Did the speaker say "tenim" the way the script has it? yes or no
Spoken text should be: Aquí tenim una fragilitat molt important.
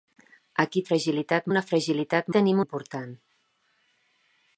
no